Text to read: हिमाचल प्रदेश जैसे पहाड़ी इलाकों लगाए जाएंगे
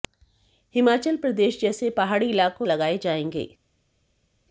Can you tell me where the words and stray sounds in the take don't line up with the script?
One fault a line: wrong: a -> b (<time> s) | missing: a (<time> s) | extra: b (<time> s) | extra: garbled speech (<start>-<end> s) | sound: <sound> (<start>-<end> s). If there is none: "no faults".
no faults